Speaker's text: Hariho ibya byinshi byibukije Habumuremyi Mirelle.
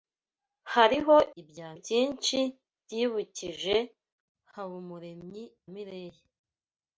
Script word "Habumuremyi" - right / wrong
right